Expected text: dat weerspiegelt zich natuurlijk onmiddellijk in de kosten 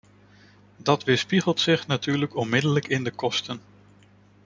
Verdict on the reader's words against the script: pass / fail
pass